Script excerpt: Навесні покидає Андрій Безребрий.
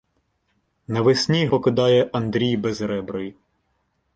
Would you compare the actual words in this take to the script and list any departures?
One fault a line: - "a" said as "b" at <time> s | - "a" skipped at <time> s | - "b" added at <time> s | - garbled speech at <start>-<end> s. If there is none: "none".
none